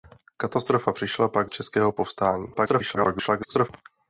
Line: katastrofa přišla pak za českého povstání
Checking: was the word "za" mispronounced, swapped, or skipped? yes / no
yes